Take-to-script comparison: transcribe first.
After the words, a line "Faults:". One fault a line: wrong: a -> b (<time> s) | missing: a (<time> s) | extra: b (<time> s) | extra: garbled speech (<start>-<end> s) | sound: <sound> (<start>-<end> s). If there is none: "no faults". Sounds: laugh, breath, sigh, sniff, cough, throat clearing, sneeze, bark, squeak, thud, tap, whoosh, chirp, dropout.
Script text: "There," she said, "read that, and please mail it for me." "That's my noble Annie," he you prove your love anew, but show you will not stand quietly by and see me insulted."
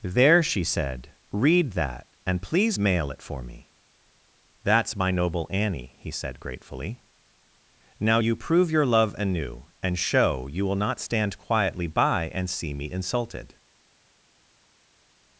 "There," she said, "read that, and please mail it for me." "That's my noble Annie," he said, gratefully. "Now you prove your love anew, and show you will not stand quietly by and see me insulted."
Faults:
extra: said gratefully Now (6.1 s)
wrong: but -> and (9.8 s)